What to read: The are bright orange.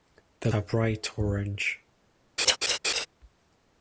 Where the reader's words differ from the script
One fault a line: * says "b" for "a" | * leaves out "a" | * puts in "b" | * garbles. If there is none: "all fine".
all fine